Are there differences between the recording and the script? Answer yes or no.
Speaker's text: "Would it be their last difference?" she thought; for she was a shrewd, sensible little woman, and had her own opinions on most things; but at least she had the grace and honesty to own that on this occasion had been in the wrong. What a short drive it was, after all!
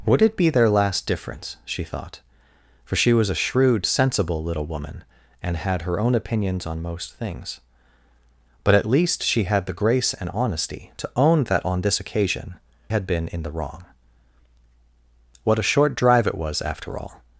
no